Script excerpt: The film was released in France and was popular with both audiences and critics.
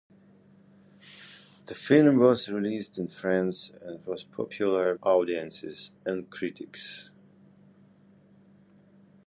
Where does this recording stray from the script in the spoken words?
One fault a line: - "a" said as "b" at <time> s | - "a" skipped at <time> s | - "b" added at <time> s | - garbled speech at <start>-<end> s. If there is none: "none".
- "with both" skipped at 5.0 s